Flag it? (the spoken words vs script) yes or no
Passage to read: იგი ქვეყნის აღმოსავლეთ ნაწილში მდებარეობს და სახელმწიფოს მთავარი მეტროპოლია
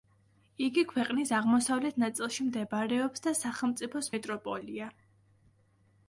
yes